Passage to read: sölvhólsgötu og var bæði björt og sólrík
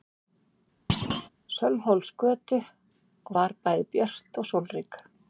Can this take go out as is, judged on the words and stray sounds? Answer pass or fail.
fail